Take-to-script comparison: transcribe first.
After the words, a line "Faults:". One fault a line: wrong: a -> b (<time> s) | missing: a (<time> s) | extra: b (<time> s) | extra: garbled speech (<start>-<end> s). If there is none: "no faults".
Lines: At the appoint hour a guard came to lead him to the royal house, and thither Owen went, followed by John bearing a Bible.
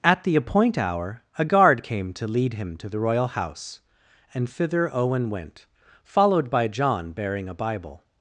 At the appoint hour a guard came to lead him to the royal house, and thither Owen went, followed by John bearing a Bible.
Faults:
no faults